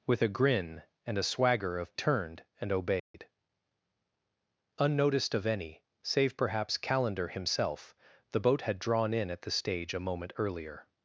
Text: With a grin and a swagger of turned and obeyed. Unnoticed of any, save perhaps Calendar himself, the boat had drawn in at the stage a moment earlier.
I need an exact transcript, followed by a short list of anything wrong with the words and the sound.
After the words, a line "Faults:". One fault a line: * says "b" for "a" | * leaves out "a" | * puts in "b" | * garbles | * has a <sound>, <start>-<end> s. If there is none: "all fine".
With a grin and a swagger of turned and obeyed. Unnoticed of any, save perhaps Calendar himself, the boat had drawn in at the stage a moment earlier.
Faults:
* has a dropout, 3.0-3.1 s